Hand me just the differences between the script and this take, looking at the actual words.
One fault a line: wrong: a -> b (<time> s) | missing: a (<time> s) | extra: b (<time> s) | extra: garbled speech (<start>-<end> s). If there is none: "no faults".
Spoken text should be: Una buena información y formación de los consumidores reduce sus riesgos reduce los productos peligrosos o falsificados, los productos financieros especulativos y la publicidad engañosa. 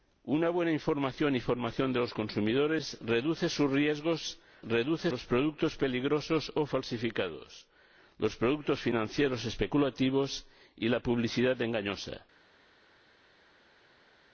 no faults